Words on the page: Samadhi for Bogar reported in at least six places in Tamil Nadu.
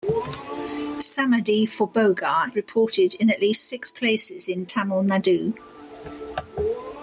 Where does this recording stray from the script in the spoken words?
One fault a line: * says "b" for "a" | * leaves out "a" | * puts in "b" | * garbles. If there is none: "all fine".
all fine